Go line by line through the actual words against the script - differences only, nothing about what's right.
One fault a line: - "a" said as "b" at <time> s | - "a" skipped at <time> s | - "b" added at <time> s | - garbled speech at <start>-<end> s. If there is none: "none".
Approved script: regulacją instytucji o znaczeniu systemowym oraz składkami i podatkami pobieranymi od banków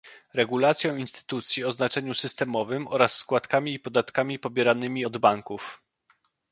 none